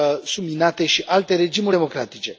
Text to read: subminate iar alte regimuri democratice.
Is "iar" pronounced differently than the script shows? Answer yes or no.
yes